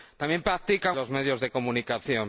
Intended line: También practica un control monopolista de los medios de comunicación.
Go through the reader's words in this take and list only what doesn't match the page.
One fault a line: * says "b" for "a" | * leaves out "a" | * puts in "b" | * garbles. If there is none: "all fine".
* leaves out "un control monopolista"